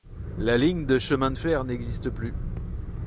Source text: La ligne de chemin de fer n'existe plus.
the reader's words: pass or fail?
pass